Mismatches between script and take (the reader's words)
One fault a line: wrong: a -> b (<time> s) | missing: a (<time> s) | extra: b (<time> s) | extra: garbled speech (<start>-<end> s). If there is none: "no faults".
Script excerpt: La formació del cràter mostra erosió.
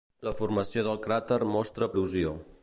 no faults